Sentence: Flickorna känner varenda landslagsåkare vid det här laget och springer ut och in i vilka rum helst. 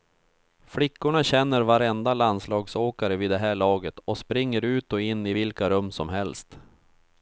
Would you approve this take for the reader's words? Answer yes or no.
no